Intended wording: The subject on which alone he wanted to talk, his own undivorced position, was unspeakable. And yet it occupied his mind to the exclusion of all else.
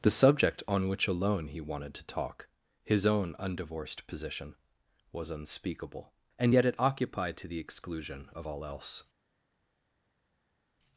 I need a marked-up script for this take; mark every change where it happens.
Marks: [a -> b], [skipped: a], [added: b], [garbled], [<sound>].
The subject on which alone he wanted to talk, his own undivorced position, was unspeakable. And yet it occupied [skipped: his mind] to the exclusion of all else.